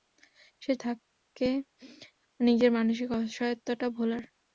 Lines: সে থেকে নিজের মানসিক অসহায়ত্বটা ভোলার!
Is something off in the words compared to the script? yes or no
no